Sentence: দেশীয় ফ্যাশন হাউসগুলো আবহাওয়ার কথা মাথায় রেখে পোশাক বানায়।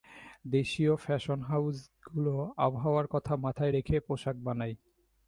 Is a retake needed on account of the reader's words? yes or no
no